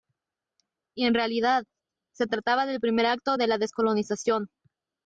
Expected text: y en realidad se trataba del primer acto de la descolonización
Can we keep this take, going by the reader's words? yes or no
yes